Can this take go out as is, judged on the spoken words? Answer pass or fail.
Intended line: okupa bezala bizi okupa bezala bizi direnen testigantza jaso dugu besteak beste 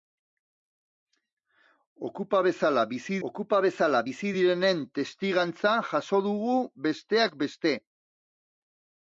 pass